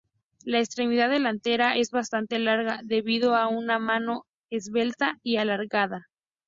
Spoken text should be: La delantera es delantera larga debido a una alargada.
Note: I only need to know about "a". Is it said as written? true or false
true